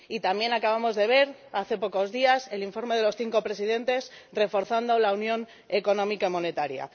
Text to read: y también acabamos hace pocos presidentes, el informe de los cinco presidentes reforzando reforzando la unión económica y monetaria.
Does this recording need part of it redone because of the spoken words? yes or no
yes